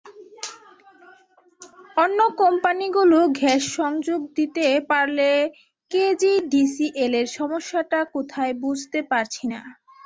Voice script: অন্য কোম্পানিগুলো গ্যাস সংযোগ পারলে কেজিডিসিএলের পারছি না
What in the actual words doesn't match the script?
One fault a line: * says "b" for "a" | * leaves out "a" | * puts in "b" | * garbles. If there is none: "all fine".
* puts in "দিতে"
* puts in "সমস্যাটা কোথায় বুঝতে"